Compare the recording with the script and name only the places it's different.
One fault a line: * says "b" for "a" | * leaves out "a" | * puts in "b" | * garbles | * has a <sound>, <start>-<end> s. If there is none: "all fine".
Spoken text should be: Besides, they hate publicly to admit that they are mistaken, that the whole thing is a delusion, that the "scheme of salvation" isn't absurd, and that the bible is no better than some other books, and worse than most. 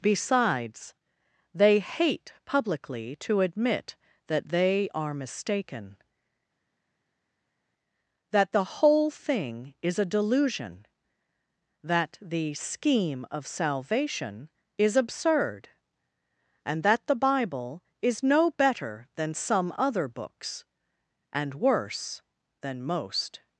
* says "is" for "isn't"